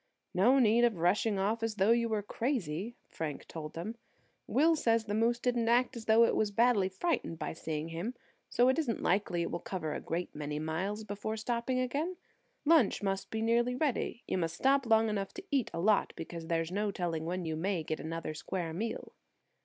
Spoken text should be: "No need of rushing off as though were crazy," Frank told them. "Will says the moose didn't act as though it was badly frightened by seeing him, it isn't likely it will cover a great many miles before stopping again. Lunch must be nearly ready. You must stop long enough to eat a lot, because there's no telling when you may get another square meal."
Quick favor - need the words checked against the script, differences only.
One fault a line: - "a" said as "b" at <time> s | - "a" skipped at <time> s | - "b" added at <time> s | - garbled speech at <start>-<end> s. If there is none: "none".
- "you" added at 1.9 s
- "so" added at 8.5 s